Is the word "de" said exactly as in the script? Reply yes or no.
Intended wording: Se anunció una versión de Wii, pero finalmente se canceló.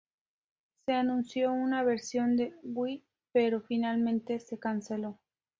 yes